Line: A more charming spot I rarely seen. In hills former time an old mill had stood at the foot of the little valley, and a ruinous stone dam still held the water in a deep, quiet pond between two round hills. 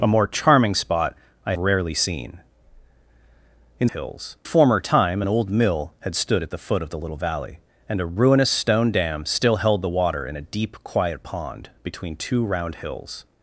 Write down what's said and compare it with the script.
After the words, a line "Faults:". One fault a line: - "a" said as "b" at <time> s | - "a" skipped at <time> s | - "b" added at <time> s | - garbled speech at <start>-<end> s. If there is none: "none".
A more charming spot I rarely seen. In hills former time an old mill had stood at the foot of the little valley, and a ruinous stone dam still held the water in a deep, quiet pond between two round hills.
Faults:
none